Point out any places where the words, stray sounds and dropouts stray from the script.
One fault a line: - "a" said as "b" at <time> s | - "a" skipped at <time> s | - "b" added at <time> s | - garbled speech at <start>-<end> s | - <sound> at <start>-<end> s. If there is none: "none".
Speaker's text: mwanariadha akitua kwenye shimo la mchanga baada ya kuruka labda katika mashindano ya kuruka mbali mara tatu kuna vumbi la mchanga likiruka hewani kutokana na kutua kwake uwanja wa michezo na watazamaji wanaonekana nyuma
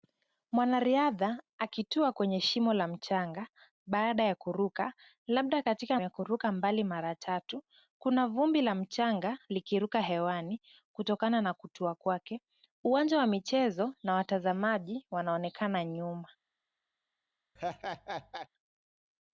- "mashindano" skipped at 6.0 s
- laugh at 17.6-18.5 s